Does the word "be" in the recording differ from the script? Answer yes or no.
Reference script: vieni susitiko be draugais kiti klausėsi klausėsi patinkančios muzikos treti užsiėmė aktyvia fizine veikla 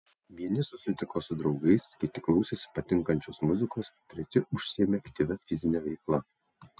yes